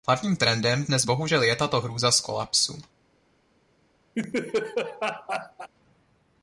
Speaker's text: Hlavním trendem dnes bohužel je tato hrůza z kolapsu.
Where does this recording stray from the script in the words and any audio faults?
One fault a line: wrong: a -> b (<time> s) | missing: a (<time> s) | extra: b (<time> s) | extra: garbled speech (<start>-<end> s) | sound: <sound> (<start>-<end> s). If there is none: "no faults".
sound: laugh (4.1-5.7 s)